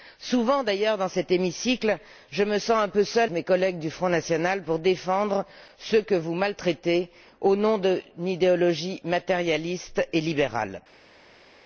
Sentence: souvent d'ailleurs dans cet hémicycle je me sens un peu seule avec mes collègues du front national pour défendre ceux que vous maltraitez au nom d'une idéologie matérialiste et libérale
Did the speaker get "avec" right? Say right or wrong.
wrong